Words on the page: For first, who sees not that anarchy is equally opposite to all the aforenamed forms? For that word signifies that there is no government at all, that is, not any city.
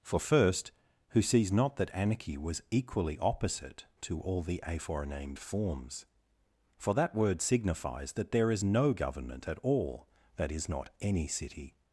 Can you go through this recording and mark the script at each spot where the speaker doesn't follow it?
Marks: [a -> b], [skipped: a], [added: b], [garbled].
For first, who sees not that anarchy [is -> was] equally opposite to all the aforenamed forms? For that word signifies that there is no government at all, that is, not any city.